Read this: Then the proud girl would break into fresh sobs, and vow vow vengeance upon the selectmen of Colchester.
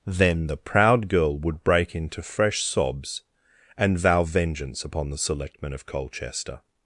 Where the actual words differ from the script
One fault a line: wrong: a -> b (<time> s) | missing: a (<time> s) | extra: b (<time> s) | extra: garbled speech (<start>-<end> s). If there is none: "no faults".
missing: vow (4.2 s)